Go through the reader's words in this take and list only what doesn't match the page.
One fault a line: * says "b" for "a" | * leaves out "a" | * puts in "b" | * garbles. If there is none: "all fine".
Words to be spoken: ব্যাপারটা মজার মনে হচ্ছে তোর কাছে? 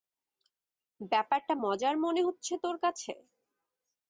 all fine